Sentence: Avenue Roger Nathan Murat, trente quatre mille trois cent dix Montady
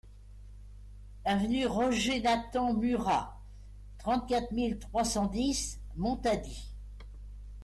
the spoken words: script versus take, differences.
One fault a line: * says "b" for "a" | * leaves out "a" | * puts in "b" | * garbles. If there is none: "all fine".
all fine